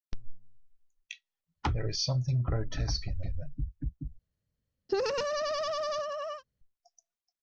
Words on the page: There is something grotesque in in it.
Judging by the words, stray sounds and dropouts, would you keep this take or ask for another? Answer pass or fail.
fail